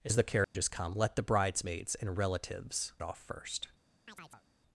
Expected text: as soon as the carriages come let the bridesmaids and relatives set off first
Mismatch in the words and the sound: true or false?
true